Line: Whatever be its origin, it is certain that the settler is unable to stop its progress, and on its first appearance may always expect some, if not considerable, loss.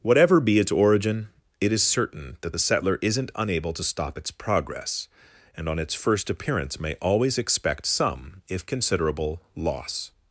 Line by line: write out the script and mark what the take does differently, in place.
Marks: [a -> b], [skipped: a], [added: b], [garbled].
Whatever be its origin, it is certain that the settler [is -> isn't] unable to stop its progress, and on its first appearance may always expect some, if [skipped: not] considerable, loss.